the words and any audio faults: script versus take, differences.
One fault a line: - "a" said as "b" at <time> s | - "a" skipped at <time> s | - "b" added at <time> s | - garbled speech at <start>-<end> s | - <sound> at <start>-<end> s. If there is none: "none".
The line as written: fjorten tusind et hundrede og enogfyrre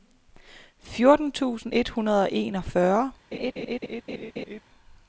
- laugh at 3.3-4.6 s